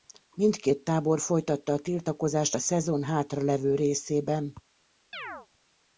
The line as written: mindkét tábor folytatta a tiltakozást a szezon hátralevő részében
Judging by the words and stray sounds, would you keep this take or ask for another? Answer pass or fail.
fail